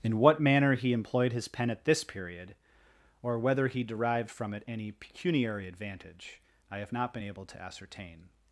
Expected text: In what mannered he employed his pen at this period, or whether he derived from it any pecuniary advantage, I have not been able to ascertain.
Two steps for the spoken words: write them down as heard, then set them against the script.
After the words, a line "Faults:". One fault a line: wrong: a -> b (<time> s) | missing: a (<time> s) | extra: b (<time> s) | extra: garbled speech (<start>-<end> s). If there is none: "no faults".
In what manner he employed his pen at this period, or whether he derived from it any pecuniary advantage, I have not been able to ascertain.
Faults:
wrong: mannered -> manner (0.4 s)